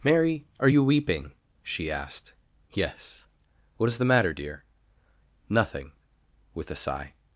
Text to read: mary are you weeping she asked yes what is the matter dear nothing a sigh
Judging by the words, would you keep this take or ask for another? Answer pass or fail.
fail